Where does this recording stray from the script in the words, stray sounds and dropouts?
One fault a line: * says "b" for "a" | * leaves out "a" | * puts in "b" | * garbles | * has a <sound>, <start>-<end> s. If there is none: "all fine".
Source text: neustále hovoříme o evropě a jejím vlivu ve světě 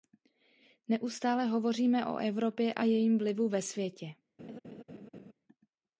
* has a laugh, 4.4-5.3 s